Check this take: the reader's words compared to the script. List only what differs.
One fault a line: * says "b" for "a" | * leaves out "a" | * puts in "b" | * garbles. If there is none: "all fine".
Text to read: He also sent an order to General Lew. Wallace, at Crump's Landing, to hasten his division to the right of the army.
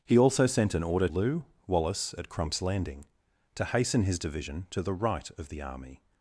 * leaves out "to General"